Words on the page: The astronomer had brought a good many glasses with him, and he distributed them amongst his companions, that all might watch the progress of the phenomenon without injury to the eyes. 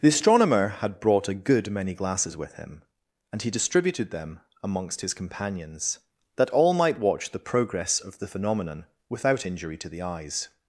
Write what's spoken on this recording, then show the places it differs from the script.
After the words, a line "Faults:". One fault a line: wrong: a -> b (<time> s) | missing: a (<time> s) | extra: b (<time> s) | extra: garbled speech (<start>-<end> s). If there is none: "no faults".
The astronomer had brought a good many glasses with him, and he distributed them amongst his companions, that all might watch the progress of the phenomenon without injury to the eyes.
Faults:
no faults